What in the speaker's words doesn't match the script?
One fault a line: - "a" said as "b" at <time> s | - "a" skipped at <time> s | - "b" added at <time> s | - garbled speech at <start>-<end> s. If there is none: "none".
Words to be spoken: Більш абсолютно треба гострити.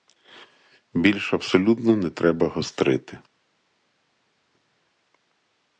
- "не" added at 1.9 s